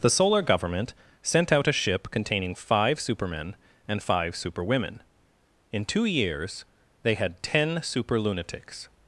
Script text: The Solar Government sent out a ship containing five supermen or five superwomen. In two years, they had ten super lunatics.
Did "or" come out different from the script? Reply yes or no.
yes